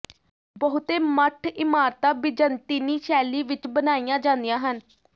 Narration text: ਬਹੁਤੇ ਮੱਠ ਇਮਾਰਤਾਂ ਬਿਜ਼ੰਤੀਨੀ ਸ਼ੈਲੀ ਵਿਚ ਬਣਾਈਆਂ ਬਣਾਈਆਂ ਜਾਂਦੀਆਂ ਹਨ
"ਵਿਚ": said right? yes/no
yes